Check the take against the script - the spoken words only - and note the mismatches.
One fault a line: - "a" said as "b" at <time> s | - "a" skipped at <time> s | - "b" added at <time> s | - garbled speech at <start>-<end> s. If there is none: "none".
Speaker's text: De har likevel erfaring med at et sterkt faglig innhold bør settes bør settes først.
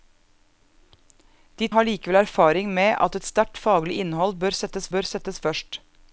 none